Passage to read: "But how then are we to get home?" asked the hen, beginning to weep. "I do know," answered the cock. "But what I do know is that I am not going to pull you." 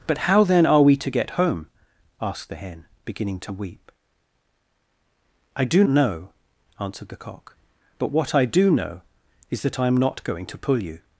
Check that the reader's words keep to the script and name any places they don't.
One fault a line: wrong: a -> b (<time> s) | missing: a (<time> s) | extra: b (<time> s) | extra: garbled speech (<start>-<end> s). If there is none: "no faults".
no faults